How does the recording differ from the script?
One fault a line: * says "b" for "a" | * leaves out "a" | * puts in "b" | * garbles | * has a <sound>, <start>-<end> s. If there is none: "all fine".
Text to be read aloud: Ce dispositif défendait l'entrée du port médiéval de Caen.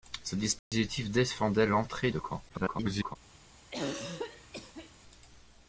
* has a dropout, 0.6-0.7 s
* leaves out "du port médiéval"
* garbles
* has a throat clearing, 3.7-4.9 s